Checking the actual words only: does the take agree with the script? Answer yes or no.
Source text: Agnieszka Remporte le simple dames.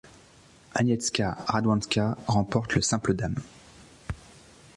no